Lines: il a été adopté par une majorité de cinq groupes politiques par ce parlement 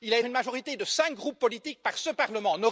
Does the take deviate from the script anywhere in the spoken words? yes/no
yes